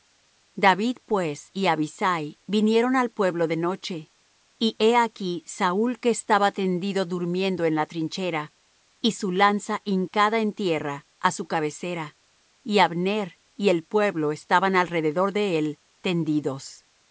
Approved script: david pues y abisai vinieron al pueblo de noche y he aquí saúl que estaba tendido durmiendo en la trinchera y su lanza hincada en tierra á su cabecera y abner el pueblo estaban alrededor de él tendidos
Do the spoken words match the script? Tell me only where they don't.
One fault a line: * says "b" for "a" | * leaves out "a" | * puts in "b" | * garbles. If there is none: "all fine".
* puts in "y"